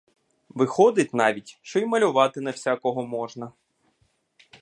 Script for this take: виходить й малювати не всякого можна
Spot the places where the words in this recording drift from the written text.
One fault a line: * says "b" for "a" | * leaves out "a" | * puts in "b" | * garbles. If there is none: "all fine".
* puts in "навіть що"